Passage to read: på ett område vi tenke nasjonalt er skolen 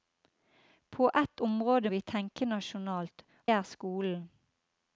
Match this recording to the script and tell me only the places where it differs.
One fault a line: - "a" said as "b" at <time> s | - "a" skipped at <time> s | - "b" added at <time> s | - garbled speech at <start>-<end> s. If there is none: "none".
none